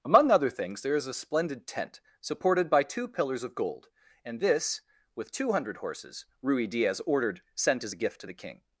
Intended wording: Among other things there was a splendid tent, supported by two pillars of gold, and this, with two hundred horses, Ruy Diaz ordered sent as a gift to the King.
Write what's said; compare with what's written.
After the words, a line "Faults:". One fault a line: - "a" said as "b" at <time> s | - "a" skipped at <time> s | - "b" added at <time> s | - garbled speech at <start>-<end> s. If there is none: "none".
Among other things there is a splendid tent, supported by two pillars of gold, and this, with two hundred horses, Ruy Diaz ordered sent as a gift to the King.
Faults:
- "was" said as "is" at 0.9 s